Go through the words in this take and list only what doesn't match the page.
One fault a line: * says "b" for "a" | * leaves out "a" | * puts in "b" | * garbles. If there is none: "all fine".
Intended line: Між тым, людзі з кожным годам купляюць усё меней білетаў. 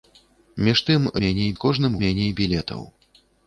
* says "меней" for "людзі"
* leaves out "годам купляюць усё"